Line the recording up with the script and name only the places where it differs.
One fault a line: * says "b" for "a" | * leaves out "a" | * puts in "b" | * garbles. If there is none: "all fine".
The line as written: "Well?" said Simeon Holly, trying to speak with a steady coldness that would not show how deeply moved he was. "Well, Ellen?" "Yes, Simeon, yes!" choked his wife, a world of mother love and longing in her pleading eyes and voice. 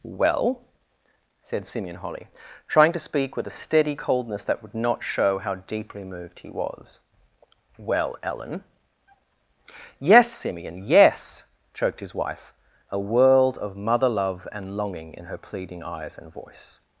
all fine